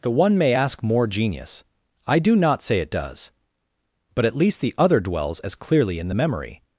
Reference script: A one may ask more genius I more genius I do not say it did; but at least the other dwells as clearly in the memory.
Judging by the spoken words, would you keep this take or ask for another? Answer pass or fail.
fail